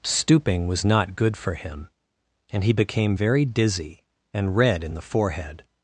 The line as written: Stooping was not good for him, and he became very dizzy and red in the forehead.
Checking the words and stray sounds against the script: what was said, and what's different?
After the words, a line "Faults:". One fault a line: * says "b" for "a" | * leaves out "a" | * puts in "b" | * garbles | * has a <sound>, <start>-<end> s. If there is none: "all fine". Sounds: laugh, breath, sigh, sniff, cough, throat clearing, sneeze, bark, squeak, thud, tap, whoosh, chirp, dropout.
Stooping was not good for him, and he became very dizzy and red in the forehead.
Faults:
all fine